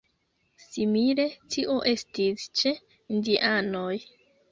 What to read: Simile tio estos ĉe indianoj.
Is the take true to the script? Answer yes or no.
no